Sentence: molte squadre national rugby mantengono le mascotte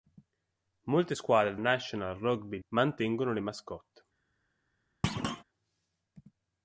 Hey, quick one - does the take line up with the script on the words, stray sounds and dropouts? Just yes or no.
no